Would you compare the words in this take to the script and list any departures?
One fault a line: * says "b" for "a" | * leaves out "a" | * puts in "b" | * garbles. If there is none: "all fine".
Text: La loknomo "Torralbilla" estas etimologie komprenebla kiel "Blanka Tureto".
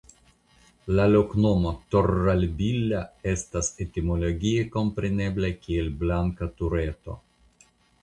all fine